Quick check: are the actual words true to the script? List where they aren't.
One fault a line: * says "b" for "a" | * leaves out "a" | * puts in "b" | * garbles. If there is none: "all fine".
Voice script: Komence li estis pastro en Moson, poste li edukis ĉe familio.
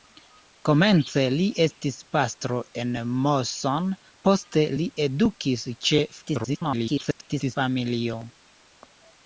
* garbles